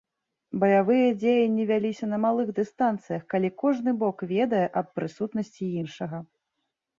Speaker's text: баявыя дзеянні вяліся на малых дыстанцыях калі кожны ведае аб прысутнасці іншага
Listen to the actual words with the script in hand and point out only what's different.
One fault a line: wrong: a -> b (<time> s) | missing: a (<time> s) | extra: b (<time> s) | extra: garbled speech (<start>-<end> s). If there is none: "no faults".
extra: бок (4.0 s)